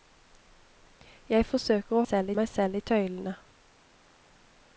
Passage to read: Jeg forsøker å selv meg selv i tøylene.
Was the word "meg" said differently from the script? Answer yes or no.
no